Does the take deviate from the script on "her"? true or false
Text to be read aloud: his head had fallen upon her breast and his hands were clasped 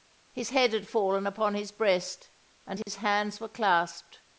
true